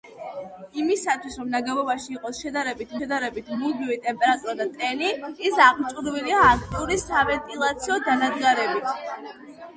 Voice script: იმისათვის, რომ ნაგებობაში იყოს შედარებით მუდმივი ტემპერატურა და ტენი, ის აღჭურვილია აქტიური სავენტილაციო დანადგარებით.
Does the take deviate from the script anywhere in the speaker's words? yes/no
yes